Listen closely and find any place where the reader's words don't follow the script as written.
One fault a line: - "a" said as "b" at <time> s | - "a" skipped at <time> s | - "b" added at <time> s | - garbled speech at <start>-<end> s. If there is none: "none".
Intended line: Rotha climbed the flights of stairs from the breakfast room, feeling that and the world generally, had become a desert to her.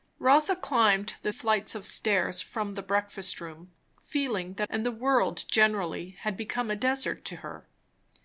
none